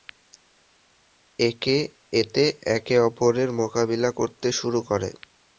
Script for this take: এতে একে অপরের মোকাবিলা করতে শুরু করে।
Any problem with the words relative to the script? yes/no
no